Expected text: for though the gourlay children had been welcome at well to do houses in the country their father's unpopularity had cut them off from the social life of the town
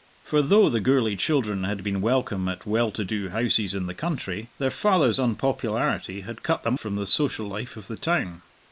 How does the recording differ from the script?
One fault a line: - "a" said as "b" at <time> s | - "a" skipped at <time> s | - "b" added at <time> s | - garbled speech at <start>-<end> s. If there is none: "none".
- "off" skipped at 6.8 s